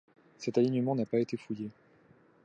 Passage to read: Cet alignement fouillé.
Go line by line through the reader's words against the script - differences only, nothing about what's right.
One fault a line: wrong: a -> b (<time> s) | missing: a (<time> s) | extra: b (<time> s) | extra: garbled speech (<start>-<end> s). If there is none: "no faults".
extra: n'a pas été (0.9 s)